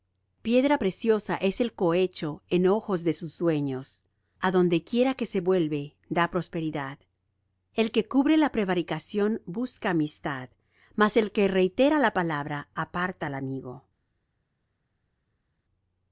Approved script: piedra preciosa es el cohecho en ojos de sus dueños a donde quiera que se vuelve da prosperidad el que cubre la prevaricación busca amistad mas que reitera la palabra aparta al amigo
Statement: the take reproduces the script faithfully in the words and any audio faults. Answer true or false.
false